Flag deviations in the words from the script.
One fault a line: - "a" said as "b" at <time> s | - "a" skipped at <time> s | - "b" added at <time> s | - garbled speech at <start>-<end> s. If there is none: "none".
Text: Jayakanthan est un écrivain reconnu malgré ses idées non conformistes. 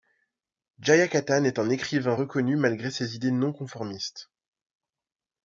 none